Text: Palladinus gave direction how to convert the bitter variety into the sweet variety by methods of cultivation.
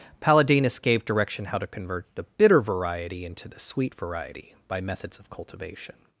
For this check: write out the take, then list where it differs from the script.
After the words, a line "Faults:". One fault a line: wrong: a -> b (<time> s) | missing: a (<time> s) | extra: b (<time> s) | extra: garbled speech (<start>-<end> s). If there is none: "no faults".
Palladinus gave direction how to convert the bitter variety into the sweet variety by methods of cultivation.
Faults:
no faults